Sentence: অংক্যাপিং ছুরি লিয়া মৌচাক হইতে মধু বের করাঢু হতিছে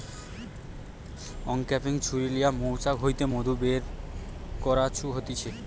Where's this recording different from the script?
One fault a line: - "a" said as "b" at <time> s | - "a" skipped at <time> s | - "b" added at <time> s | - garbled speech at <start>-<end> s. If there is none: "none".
none